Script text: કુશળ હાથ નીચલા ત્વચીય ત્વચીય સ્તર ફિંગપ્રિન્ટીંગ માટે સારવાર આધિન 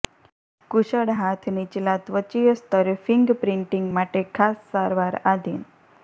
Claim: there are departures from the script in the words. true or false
true